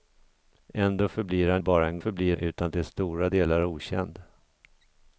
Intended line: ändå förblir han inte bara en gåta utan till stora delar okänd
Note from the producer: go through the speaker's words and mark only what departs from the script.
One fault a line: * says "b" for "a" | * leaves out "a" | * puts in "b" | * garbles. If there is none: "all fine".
* leaves out "inte"
* says "förblir" for "gåta"